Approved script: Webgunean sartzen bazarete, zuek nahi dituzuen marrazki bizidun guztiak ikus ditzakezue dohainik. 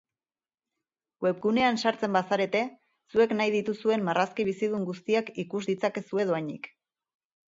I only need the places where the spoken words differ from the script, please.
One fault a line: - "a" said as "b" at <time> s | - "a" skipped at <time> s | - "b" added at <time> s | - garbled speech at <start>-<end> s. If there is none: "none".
none